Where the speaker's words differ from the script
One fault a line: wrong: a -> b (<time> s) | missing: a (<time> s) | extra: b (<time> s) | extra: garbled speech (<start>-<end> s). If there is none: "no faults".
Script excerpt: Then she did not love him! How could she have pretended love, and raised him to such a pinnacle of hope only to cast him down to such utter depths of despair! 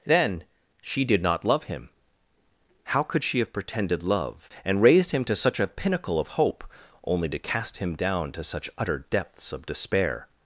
no faults